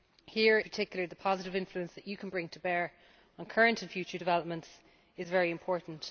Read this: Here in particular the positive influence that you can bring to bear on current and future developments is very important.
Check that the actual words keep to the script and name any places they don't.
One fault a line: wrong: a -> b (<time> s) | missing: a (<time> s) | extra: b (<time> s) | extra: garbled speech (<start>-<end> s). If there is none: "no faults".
missing: in (0.6 s)